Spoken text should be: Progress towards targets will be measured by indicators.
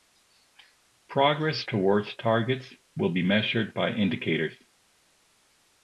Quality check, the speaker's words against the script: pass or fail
pass